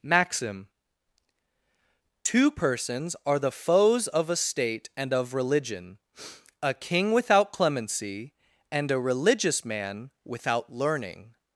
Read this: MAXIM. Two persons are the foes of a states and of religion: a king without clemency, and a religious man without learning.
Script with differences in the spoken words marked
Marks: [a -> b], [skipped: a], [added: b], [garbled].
MAXIM. Two persons are the foes of a [states -> state] and of religion: a king without clemency, and a religious man without learning.